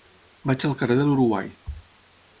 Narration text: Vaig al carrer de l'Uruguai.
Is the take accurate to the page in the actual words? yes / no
yes